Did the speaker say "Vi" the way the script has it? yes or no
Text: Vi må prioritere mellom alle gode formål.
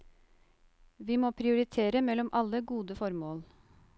yes